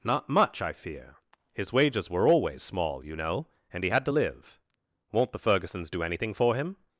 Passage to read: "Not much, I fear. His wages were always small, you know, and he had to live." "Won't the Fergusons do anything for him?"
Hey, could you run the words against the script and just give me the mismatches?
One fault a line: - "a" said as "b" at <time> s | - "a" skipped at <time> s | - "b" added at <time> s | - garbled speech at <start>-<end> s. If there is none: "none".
none